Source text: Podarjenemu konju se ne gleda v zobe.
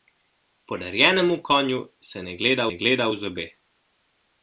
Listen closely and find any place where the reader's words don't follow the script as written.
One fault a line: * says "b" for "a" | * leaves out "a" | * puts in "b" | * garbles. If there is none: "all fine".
* puts in "ne gleda"